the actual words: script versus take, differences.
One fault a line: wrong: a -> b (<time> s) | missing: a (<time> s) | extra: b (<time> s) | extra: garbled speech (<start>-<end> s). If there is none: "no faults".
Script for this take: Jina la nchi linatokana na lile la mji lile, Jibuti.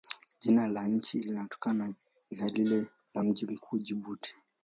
wrong: lile -> mkuu (3.4 s)